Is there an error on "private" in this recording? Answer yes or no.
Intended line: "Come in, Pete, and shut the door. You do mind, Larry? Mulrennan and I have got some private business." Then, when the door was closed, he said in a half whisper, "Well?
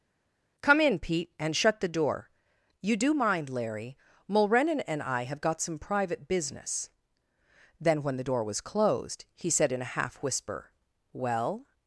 no